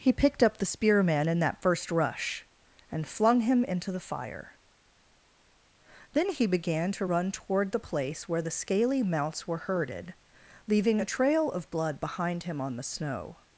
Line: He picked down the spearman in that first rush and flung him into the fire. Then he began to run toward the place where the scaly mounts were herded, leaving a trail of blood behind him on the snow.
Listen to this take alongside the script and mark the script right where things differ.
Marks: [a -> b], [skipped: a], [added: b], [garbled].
He picked [down -> up] the spearman in that first rush and flung him into the fire. Then he began to run toward the place where the scaly mounts were herded, leaving a trail of blood behind him on the snow.